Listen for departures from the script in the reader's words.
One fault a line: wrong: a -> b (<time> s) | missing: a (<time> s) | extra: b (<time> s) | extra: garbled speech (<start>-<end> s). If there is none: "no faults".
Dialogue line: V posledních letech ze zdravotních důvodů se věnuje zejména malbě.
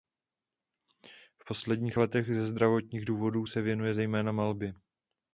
no faults